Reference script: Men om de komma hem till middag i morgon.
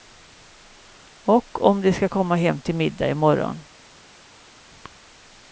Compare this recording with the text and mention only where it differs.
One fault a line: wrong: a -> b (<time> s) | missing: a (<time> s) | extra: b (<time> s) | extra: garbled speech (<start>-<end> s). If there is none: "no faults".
wrong: Men -> Och (1.2 s)
extra: ska (1.9 s)